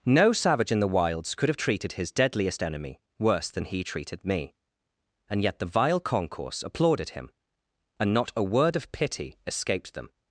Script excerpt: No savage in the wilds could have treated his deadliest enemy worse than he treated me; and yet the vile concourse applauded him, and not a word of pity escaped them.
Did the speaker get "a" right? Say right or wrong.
right